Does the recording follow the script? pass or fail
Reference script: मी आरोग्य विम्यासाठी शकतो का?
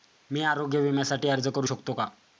fail